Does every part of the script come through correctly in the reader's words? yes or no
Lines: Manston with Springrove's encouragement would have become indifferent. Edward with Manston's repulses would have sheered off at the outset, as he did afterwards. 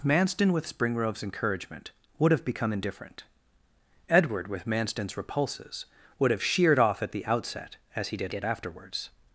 no